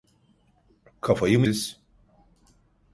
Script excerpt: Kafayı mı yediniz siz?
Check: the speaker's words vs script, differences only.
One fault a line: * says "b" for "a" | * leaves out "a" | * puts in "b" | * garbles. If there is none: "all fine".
* leaves out "yediniz"